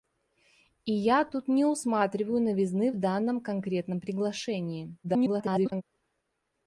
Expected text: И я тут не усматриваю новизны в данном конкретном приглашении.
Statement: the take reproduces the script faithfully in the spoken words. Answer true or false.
false